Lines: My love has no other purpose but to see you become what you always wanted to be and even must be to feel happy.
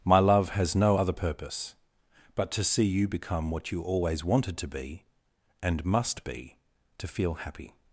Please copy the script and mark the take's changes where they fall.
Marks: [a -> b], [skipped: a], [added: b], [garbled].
My love has no other purpose but to see you become what you always wanted to be and [skipped: even] must be to feel happy.